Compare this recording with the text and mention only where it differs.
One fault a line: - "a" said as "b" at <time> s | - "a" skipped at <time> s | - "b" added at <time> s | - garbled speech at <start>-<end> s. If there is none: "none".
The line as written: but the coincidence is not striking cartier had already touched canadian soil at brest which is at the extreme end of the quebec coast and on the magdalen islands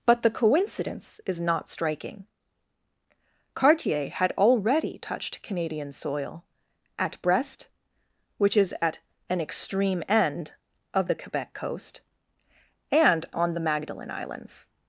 - "the" said as "an" at 9.3 s